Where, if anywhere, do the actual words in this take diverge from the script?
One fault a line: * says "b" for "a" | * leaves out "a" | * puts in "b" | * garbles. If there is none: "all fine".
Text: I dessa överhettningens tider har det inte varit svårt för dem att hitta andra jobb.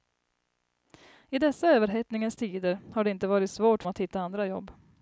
* leaves out "för dem"